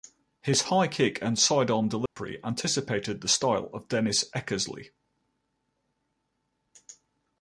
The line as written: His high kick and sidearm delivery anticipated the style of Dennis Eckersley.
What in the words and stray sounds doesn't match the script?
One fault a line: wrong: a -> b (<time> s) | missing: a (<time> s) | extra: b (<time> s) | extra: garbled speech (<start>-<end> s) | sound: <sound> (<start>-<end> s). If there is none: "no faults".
sound: dropout (2.1-2.2 s)